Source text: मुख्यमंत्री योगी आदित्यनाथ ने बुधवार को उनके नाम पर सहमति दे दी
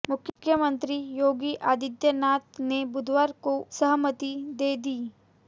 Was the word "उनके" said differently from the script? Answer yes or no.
yes